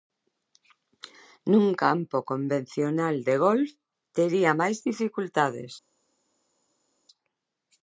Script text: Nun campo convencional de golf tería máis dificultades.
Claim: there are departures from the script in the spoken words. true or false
false